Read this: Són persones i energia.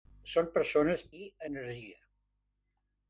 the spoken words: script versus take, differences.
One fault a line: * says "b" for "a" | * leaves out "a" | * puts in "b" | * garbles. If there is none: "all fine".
all fine